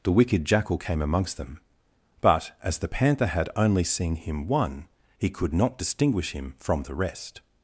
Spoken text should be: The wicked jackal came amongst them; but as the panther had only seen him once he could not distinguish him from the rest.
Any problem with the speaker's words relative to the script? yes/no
yes